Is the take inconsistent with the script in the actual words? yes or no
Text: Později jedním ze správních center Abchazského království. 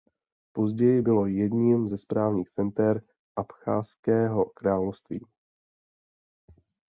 yes